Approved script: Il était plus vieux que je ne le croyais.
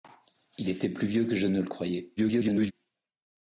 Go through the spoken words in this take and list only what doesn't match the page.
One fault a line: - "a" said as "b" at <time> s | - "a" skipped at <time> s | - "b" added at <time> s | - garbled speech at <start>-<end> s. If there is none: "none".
- garbled speech at 2.2-2.7 s